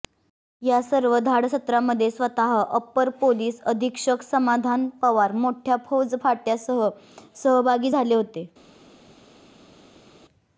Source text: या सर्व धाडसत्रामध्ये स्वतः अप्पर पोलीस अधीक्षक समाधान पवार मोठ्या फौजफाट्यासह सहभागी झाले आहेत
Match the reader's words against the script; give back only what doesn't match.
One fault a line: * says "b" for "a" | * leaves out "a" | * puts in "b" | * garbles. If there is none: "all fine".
* says "होते" for "आहेत"